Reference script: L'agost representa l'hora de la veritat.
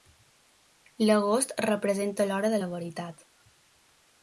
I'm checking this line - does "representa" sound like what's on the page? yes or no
yes